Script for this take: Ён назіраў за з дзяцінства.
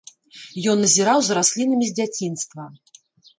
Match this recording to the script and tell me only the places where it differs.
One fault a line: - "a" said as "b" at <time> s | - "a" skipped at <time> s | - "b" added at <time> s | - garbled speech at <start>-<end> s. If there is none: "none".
- "раслінамі" added at 1.4 s